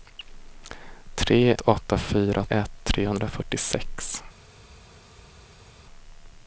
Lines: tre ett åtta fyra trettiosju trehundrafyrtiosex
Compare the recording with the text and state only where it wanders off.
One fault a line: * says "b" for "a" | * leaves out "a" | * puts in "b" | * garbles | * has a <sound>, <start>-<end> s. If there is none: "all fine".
* leaves out "ett"
* says "ett" for "trettiosju"